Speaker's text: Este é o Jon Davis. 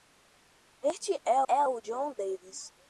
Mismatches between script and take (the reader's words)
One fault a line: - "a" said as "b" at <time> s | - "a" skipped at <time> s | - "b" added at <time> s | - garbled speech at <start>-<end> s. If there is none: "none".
- "é" added at 1.5 s